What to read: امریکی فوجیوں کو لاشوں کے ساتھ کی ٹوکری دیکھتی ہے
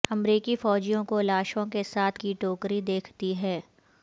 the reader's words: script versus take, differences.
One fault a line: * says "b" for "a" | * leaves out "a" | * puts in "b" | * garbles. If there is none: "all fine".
all fine